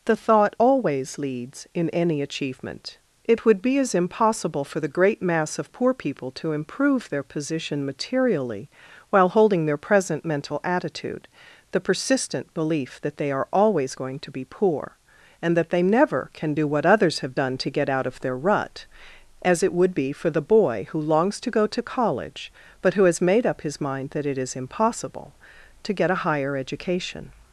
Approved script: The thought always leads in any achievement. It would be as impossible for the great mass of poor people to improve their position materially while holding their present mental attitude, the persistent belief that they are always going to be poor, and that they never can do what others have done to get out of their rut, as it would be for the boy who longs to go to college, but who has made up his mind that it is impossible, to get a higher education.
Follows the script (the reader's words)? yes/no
yes